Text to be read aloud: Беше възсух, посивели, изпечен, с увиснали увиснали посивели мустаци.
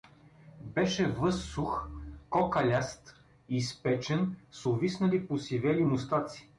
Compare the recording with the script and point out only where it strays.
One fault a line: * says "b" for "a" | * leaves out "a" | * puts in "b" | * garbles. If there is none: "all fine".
* says "кокаляст" for "посивели"
* leaves out "увиснали"